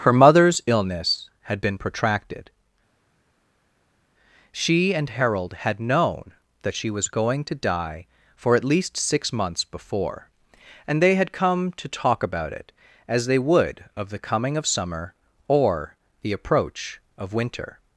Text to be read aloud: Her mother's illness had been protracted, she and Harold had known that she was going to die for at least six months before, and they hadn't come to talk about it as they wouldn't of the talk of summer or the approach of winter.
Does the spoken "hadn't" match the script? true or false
false